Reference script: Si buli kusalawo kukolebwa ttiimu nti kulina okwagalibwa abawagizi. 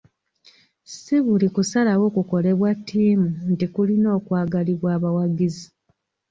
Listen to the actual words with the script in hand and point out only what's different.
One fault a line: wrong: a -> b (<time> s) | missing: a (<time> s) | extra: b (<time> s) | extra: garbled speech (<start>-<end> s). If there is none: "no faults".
no faults